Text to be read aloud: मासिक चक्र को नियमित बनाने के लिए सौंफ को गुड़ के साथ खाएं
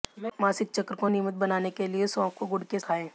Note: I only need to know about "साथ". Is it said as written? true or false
false